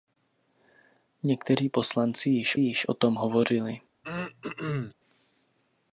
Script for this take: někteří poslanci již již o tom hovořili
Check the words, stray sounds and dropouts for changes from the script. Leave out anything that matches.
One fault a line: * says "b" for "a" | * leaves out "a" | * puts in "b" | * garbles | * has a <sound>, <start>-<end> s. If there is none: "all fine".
* has a throat clearing, 4.0-4.9 s